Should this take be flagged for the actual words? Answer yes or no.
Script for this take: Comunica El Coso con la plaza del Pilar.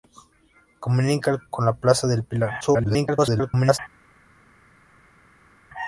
yes